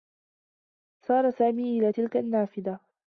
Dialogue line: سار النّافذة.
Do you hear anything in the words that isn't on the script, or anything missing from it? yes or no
yes